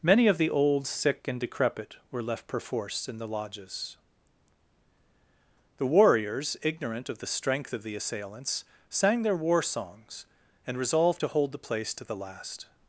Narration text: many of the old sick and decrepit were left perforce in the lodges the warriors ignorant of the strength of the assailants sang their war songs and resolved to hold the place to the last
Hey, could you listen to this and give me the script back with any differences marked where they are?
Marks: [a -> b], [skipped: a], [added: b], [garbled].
many of the old sick and decrepit were left perforce in the lodges the warriors ignorant of the strength of the assailants sang their war songs and resolved to hold the place to the last